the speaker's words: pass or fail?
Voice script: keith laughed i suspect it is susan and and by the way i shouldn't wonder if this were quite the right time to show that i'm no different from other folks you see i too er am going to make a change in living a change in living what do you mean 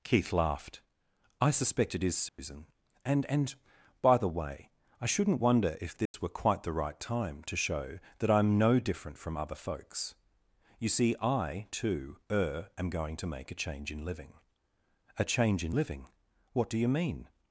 pass